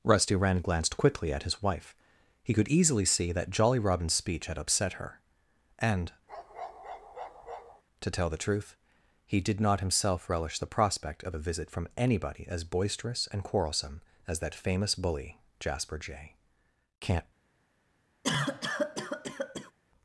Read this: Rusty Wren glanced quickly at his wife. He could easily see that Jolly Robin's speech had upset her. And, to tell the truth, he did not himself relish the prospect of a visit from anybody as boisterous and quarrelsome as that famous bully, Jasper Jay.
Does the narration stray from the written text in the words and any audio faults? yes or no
yes